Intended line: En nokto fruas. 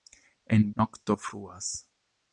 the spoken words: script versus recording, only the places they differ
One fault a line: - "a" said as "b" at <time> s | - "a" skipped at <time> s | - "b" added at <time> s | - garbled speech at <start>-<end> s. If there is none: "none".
none